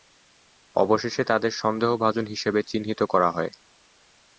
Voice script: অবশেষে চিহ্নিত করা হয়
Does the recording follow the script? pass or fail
fail